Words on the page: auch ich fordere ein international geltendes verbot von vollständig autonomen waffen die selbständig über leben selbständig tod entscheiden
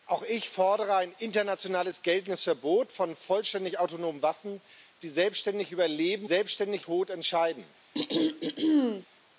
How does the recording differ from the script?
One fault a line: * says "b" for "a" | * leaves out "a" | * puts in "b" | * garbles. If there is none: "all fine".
all fine